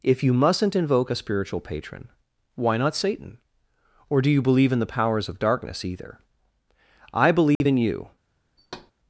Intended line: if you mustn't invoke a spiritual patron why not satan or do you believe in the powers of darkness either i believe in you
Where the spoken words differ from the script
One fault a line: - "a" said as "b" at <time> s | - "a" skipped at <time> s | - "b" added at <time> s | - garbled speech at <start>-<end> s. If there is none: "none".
none